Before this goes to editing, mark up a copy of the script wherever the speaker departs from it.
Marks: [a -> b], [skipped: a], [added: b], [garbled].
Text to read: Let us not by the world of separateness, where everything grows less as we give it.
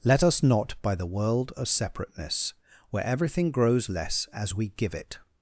Let us not by the world of separateness, where everything grows less as we give it.